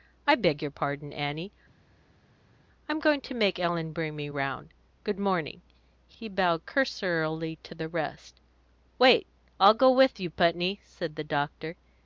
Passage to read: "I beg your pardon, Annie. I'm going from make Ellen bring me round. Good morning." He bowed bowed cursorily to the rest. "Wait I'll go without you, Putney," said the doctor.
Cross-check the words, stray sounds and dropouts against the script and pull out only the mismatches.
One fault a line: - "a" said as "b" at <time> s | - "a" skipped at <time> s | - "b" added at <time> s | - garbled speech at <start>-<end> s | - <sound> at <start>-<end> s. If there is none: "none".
- "from" said as "to" at 3.2 s
- "bowed" skipped at 6.6 s
- "without" said as "with" at 9.9 s